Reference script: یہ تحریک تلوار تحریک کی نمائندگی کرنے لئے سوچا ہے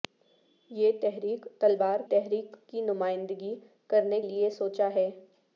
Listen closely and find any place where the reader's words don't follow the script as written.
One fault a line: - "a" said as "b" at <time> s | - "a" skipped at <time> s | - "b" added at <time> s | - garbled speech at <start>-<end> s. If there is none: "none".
none